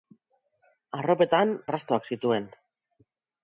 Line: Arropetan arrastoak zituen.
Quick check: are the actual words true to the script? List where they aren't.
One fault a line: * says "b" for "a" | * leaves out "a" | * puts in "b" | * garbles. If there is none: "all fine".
all fine